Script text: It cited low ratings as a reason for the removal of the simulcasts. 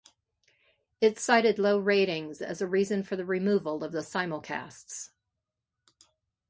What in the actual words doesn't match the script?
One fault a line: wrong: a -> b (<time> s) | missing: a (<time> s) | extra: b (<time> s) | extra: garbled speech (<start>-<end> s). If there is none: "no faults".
no faults